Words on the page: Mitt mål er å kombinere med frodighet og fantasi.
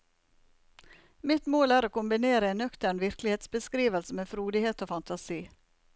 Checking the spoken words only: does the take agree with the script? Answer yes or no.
no